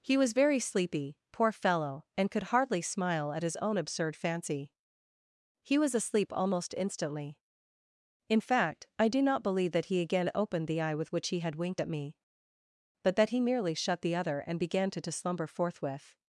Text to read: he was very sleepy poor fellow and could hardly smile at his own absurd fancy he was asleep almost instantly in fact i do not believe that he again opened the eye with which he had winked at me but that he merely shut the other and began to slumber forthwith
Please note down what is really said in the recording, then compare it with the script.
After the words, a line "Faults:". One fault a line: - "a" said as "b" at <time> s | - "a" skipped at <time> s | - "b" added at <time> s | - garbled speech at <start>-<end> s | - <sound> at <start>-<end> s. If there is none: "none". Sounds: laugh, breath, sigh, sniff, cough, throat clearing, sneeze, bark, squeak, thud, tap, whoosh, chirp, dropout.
he was very sleepy poor fellow and could hardly smile at his own absurd fancy he was asleep almost instantly in fact i do not believe that he again opened the eye with which he had winked at me but that he merely shut the other and began to to slumber forthwith
Faults:
- "to" added at 15.0 s